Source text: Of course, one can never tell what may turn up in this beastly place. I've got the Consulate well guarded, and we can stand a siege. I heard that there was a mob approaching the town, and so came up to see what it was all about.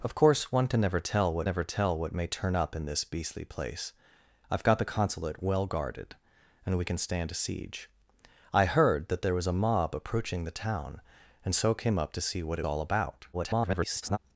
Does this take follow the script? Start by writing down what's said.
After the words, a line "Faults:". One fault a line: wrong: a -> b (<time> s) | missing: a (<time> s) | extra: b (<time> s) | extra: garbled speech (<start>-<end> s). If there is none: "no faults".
Of course, one can never tell what never tell what may turn up in this beastly place. I've got the Consulate well guarded, and we can stand a siege. I heard that there was a mob approaching the town, and so came up to see what it all about. [garbled]
Faults:
extra: never tell what (1.4 s)
missing: was (12.7 s)
extra: garbled speech (13.3-14.2 s)